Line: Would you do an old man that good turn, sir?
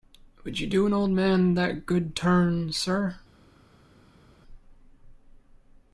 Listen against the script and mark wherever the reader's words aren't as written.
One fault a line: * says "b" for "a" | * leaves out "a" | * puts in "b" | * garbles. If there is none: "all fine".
all fine